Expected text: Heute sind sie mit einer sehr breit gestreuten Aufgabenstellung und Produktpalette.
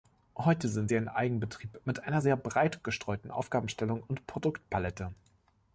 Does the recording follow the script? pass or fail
fail